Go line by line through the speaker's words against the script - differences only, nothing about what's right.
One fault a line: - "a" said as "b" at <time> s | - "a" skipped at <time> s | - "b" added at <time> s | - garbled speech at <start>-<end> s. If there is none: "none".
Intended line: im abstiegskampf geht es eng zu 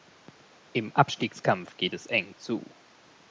none